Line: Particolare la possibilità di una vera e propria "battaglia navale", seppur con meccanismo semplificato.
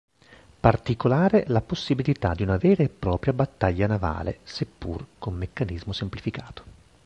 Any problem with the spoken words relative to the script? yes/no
no